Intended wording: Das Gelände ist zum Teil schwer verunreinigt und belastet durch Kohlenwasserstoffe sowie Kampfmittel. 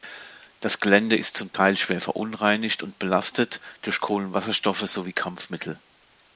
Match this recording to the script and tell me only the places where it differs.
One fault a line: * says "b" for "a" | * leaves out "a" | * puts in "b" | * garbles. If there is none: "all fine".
all fine